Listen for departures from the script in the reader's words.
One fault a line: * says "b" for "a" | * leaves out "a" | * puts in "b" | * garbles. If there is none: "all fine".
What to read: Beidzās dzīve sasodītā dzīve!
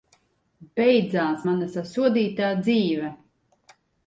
* says "mana" for "dzīve"